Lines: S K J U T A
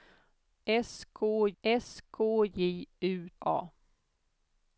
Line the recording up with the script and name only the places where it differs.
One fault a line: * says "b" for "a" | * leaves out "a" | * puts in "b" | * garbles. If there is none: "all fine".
* puts in "s K"
* leaves out "T"